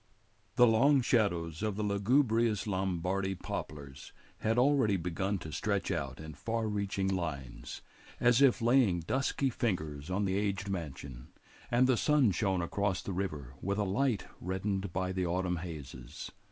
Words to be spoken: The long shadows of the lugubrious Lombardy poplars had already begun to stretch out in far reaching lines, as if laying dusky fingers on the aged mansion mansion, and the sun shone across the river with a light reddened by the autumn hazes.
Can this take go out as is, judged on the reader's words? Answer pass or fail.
fail